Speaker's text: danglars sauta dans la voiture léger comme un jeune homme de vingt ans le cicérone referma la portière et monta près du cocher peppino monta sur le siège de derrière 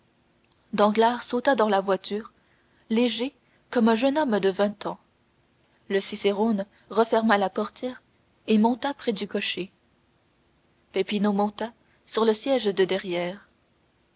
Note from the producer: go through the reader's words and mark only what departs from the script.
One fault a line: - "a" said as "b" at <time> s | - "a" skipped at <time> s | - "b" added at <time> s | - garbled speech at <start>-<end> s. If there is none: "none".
none